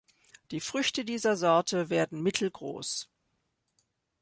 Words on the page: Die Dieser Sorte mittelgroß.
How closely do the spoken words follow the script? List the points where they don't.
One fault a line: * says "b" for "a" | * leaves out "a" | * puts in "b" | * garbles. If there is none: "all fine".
* puts in "Früchte"
* puts in "werden"